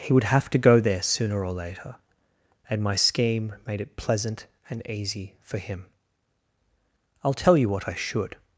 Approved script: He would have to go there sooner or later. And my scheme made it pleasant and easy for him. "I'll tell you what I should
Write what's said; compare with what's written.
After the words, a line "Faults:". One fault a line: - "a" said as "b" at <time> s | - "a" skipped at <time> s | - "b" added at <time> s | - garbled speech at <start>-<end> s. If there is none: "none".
He would have to go there sooner or later. And my scheme made it pleasant and easy for him. "I'll tell you what I should
Faults:
none